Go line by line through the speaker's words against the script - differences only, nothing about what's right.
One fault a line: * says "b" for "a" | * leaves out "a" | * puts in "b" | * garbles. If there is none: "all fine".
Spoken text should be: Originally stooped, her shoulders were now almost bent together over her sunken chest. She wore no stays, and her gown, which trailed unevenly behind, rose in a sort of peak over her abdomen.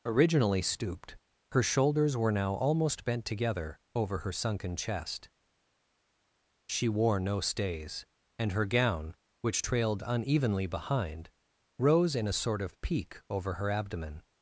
all fine